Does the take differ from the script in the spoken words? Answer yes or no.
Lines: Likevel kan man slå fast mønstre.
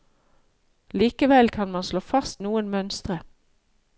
yes